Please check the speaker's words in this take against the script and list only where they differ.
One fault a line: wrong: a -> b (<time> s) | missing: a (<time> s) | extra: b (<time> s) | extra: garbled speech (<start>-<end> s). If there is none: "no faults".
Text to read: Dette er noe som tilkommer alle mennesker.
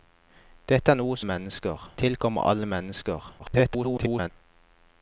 wrong: som -> mennesker (1.2 s)
extra: garbled speech (3.4-4.3 s)